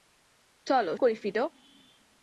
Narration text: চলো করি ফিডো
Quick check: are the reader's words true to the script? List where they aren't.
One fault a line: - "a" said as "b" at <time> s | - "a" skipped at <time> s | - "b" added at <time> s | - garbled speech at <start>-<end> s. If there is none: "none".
none